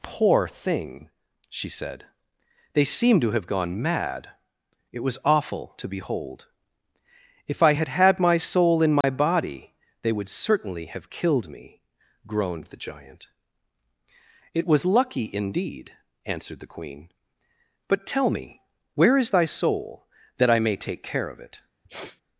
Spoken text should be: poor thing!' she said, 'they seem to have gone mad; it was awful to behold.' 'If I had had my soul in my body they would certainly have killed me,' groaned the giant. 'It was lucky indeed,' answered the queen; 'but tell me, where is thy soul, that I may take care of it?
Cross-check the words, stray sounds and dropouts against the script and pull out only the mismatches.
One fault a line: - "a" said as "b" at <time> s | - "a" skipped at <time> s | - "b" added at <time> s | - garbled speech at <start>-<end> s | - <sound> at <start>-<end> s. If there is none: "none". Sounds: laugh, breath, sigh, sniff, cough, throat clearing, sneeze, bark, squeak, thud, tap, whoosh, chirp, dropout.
- dropout at 9.0-9.0 s
- sniff at 21.8-22.2 s